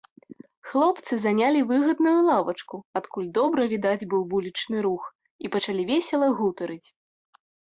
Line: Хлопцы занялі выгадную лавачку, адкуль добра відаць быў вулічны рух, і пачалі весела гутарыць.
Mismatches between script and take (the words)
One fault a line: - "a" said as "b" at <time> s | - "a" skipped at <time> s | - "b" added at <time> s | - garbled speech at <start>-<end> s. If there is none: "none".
none